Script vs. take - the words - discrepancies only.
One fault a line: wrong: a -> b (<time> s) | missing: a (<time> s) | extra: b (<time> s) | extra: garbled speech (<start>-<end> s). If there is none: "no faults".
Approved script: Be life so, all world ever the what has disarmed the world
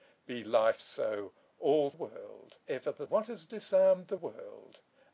no faults